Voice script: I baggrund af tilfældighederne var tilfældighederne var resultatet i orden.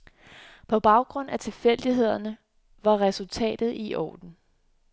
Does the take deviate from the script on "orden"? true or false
false